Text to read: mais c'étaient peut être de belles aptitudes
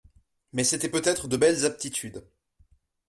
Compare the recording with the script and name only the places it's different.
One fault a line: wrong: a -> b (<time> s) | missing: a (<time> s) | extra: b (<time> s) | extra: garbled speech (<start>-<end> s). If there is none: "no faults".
no faults